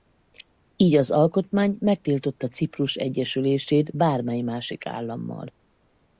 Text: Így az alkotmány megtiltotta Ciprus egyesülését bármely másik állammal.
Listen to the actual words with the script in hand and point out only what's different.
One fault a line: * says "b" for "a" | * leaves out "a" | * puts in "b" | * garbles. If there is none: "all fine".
all fine